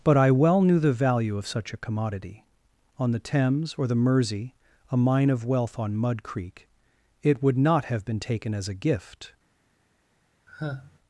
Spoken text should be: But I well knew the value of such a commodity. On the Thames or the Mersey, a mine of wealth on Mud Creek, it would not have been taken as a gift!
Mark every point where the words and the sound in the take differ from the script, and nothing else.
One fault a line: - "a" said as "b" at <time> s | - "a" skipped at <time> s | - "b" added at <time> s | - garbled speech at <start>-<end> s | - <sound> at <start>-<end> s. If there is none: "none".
- sigh at 10.5-11.0 s